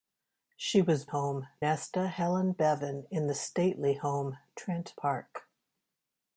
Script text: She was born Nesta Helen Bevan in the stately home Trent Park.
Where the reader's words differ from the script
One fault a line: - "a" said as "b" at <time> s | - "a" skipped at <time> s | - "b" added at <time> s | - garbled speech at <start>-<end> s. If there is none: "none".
- "born" said as "home" at 1.0 s